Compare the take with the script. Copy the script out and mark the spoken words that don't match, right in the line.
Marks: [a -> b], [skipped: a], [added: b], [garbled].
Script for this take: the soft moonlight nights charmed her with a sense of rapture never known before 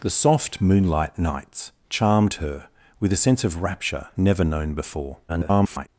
the soft moonlight nights charmed her with a sense of rapture never known before [garbled]